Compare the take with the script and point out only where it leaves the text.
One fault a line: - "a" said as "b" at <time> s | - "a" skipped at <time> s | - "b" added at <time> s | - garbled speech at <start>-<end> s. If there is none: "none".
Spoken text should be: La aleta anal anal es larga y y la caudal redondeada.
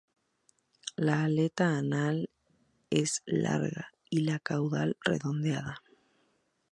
- "anal" skipped at 2.3 s
- "y" skipped at 4.2 s